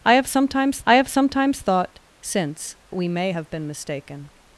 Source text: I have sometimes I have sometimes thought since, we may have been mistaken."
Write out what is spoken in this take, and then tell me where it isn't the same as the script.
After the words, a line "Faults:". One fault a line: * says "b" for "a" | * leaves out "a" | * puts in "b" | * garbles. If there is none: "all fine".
I have sometimes I have sometimes thought since, we may have been mistaken."
Faults:
all fine